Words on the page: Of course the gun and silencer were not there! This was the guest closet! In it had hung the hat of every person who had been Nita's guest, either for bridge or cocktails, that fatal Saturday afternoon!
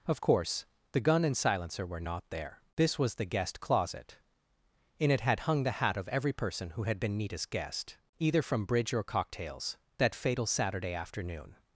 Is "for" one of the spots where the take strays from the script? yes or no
yes